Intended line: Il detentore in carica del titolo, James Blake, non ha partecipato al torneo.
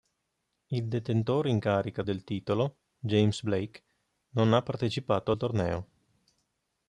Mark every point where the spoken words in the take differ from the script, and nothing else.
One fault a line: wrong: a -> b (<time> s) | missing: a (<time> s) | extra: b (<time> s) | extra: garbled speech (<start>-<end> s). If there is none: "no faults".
no faults